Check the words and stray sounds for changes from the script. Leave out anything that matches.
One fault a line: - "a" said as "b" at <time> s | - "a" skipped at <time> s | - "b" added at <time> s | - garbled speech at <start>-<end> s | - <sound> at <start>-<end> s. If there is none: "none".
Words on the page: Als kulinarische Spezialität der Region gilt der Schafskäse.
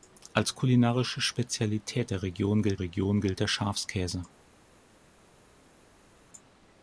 - "Region gilt" added at 2.8 s